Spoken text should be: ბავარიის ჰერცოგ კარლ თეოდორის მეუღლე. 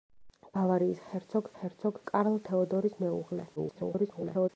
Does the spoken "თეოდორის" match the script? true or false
true